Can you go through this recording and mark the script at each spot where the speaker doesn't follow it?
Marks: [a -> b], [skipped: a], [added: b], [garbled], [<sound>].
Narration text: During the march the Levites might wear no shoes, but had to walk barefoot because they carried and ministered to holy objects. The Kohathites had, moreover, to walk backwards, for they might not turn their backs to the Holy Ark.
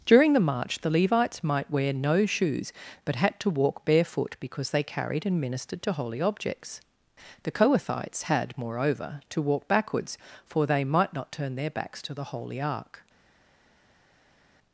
During the march the Levites might wear no shoes, but had to walk barefoot because they carried and ministered to holy objects. The Kohathites had, moreover, to walk backwards, for they might not turn their backs to the Holy Ark.